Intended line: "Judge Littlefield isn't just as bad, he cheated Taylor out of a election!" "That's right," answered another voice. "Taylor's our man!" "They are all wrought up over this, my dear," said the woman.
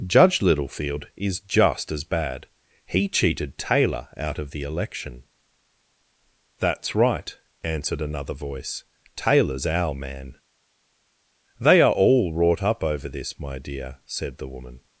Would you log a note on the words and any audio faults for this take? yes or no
yes